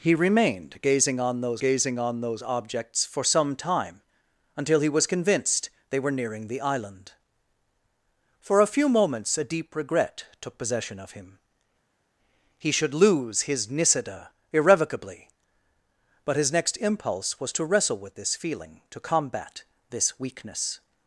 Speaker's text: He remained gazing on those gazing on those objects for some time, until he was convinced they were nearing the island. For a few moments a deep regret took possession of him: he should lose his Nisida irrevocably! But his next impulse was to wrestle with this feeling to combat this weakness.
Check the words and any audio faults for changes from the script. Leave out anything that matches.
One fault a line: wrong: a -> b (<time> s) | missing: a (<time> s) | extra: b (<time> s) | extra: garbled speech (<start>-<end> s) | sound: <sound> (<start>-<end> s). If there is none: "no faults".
no faults